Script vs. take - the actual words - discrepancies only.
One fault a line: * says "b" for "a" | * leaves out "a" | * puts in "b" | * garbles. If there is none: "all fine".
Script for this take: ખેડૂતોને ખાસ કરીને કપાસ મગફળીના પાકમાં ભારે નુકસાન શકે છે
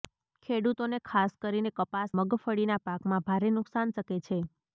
all fine